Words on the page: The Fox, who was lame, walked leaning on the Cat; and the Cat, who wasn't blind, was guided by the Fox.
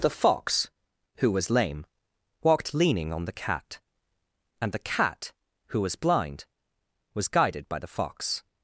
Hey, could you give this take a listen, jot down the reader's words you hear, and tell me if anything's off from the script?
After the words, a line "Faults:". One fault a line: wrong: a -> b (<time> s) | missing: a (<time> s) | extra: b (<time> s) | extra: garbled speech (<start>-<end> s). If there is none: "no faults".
The Fox, who was lame, walked leaning on the Cat; and the Cat, who was blind, was guided by the Fox.
Faults:
wrong: wasn't -> was (5.8 s)